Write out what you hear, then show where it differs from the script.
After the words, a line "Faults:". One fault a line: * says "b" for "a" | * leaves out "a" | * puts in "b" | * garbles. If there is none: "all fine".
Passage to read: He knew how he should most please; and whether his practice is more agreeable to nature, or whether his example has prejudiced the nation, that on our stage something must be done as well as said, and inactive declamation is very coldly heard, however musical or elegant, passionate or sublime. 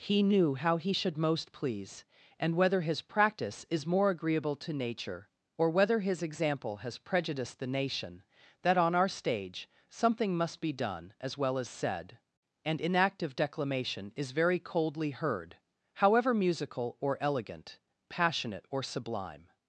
He knew how he should most please; and whether his practice is more agreeable to nature, or whether his example has prejudiced the nation, that on our stage something must be done as well as said, and inactive declamation is very coldly heard, however musical or elegant, passionate or sublime.
Faults:
all fine